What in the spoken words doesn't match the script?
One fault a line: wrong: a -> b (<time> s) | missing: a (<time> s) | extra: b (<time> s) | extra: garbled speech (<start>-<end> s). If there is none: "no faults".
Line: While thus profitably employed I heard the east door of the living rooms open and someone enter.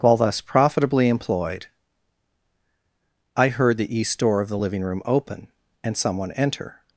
wrong: rooms -> room (4.8 s)